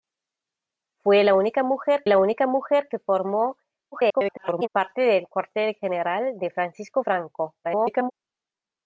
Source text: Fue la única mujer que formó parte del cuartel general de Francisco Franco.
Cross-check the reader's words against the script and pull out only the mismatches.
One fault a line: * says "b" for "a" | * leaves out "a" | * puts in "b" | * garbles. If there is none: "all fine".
* puts in "la única mujer"
* garbles
* garbles